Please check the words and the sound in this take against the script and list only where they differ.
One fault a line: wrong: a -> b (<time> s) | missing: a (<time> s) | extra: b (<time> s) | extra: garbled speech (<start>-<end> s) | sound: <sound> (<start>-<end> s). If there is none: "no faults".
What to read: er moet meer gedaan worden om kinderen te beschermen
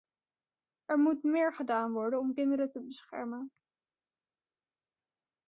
no faults